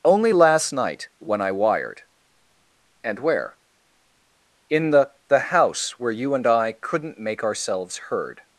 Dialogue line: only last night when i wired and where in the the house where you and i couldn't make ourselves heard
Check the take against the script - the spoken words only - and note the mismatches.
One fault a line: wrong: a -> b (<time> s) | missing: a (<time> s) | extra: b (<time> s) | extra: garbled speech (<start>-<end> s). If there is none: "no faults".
no faults